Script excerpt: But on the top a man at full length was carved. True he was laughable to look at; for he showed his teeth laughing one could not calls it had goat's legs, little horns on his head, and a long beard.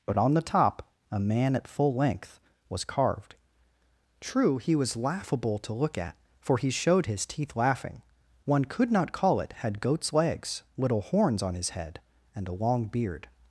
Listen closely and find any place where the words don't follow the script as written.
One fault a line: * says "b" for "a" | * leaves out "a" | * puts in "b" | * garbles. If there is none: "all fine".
* says "call" for "calls"